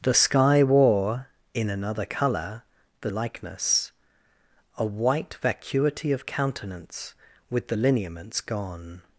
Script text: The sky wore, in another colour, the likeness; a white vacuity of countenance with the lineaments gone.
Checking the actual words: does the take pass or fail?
pass